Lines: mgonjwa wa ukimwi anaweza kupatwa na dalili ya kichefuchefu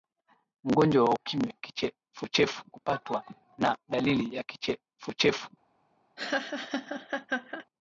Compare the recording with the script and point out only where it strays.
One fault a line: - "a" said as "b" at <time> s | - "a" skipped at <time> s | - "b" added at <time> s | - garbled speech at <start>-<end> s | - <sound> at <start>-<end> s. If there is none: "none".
- "anaweza" said as "kichefuchefu" at 1.6 s
- laugh at 6.2-7.7 s